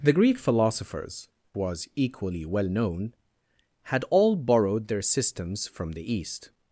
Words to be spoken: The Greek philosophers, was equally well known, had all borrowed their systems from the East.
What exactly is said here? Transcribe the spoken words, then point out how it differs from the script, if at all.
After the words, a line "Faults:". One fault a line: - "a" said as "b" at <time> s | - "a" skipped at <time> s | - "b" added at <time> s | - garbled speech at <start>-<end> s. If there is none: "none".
The Greek philosophers, was equally well known, had all borrowed their systems from the East.
Faults:
none